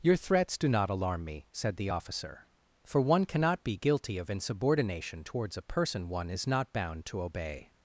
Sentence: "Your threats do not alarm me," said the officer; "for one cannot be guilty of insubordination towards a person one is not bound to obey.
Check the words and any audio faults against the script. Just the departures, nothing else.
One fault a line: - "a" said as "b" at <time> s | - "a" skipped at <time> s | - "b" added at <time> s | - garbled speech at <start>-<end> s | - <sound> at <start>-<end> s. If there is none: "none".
none